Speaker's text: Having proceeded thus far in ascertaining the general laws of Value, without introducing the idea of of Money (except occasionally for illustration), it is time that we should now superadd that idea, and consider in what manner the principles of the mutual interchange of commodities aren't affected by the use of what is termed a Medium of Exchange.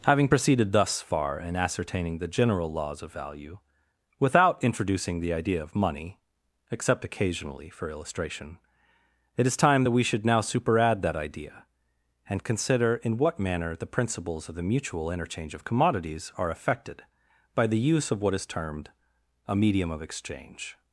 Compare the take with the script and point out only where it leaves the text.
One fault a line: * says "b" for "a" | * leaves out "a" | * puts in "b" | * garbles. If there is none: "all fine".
* leaves out "of"
* says "are" for "aren't"